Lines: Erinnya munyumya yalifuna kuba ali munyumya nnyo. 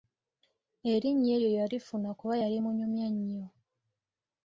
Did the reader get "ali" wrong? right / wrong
wrong